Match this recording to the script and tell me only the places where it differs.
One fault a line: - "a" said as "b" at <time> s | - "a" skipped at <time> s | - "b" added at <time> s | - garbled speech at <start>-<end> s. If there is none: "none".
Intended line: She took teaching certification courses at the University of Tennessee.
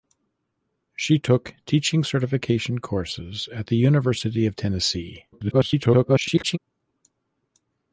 - garbled speech at 5.3-6.6 s